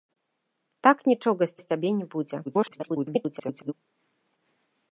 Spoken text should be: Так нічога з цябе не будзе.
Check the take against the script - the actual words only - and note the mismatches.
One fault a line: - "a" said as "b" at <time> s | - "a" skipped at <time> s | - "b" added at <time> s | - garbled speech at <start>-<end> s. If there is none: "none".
- "з" added at 1.6 s
- garbled speech at 2.5-3.7 s